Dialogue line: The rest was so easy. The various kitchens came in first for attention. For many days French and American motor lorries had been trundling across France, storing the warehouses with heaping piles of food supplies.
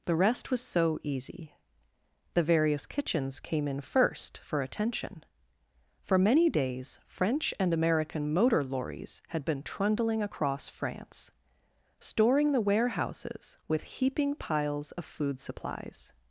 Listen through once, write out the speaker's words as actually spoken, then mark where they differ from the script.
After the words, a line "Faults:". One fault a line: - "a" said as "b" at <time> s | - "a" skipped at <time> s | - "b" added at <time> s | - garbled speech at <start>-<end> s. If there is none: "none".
The rest was so easy. The various kitchens came in first for attention. For many days French and American motor lorries had been trundling across France, storing the warehouses with heaping piles of food supplies.
Faults:
none